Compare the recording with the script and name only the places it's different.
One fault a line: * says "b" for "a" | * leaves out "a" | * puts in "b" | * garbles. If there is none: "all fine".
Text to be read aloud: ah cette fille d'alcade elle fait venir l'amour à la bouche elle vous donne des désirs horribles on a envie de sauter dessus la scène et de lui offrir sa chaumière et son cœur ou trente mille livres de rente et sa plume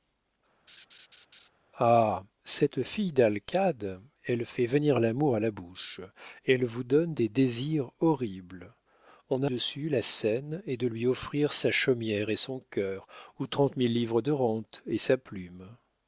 * leaves out "envie de sauter"